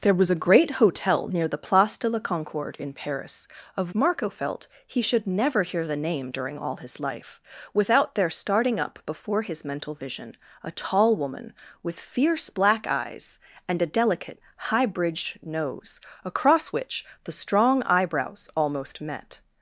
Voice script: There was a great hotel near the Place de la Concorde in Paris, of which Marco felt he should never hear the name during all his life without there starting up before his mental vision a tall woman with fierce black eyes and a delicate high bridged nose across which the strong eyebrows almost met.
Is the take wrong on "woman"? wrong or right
right